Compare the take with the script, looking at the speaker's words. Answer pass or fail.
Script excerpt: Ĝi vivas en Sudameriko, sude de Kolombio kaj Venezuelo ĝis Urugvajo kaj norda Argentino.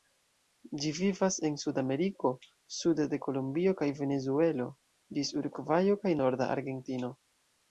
pass